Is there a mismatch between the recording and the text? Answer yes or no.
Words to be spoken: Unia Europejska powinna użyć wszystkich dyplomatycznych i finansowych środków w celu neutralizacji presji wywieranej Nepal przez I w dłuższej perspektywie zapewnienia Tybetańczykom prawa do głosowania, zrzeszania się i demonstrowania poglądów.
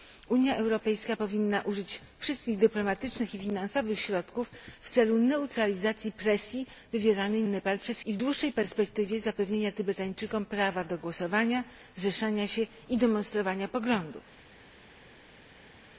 no